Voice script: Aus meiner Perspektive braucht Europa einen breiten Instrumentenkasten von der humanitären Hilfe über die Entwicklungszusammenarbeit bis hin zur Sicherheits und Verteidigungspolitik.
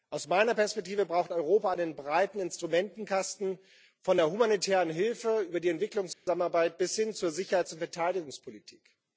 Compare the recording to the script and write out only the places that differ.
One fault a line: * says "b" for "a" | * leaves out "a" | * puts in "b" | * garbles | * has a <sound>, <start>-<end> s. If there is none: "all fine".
* has a dropout, 6.1-6.3 s